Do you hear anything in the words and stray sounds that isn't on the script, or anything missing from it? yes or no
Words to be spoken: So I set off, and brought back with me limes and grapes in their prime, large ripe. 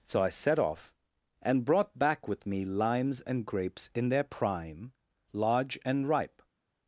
yes